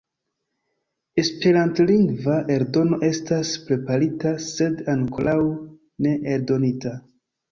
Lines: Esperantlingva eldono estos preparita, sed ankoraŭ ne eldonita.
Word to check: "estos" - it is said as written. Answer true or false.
false